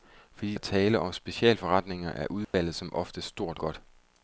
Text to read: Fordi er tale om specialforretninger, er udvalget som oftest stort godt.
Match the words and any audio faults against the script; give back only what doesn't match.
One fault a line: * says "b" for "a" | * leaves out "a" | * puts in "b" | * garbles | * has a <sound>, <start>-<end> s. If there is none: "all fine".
* has a dropout, 2.4-2.5 s